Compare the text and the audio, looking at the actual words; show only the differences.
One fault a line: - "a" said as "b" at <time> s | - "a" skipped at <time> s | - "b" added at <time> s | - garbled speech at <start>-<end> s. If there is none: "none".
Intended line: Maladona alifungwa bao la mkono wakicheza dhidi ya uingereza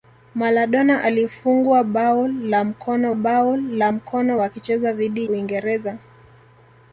- "bao la mkono" added at 3.1 s
- "ya" skipped at 5.3 s